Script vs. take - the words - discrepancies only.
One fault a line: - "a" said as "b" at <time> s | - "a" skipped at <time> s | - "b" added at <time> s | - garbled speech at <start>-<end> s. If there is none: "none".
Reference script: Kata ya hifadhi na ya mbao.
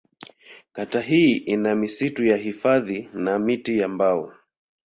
- "hii ina misitu" added at 1.0 s
- "miti" added at 3.4 s